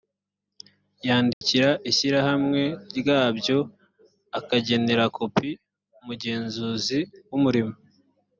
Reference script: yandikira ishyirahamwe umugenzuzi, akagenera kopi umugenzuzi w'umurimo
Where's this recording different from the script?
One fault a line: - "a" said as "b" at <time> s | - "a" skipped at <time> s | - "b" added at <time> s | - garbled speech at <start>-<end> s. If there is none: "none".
- "umugenzuzi" said as "ryabyo" at 3.0 s